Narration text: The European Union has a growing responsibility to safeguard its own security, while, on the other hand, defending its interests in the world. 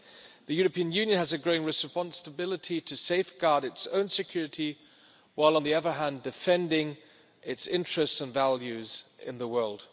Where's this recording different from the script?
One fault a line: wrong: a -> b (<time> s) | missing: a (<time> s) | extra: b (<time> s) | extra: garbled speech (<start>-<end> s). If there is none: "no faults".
extra: and values (8.2 s)